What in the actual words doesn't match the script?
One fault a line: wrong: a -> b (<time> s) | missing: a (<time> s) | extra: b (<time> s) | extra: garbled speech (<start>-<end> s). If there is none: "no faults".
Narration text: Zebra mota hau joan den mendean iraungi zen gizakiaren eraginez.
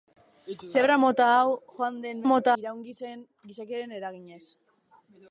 wrong: mendean -> mota (2.3 s)